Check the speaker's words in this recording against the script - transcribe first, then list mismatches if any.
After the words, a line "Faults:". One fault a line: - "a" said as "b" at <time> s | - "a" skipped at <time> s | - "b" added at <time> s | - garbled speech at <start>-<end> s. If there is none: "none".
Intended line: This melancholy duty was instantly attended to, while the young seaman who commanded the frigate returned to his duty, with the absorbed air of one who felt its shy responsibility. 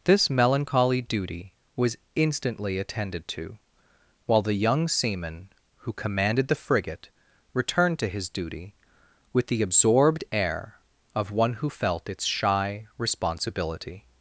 This melancholy duty was instantly attended to, while the young seaman who commanded the frigate returned to his duty, with the absorbed air of one who felt its shy responsibility.
Faults:
none